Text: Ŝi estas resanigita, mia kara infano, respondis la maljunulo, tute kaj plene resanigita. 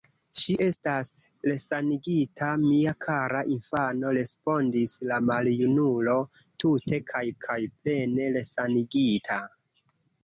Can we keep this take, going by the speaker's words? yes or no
no